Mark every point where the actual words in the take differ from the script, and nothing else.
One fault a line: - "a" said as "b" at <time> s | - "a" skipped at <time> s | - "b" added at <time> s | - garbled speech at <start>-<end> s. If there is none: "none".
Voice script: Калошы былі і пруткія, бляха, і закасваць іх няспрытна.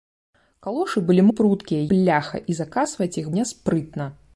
none